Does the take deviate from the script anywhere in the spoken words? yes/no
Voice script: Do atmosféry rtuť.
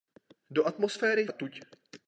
no